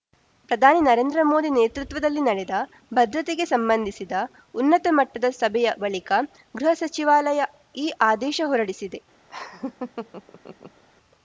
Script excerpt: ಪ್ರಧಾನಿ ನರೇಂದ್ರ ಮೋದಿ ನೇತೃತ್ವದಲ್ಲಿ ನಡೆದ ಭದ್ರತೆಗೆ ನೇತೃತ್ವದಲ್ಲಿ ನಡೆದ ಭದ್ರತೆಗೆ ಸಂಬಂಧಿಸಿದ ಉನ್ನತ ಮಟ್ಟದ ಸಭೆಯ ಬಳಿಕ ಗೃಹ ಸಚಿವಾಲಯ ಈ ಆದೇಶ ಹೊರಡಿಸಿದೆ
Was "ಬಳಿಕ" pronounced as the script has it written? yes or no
yes